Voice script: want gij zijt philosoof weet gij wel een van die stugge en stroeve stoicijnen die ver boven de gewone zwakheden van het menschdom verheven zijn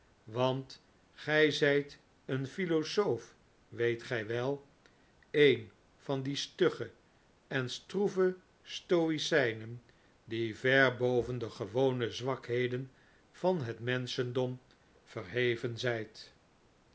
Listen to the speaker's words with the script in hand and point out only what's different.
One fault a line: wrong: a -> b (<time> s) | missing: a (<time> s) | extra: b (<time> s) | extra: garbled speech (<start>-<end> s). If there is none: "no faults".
extra: een (2.2 s)